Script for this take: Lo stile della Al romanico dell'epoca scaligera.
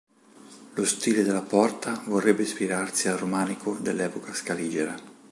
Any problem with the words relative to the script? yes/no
yes